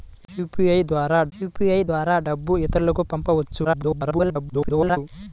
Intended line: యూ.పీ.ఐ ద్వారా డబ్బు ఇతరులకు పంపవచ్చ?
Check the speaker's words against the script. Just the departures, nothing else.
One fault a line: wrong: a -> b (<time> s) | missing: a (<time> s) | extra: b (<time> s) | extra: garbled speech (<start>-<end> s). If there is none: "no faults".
extra: యూ.పీ.ఐ ద్వారా (1.3 s)
extra: garbled speech (3.6-5.0 s)